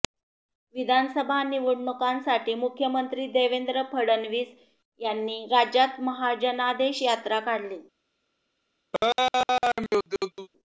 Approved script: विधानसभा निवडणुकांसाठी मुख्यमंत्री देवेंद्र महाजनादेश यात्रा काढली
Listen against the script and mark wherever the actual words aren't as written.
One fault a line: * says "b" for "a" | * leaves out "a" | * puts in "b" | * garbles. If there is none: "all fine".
* puts in "फडणवीस यांनी राज्यात"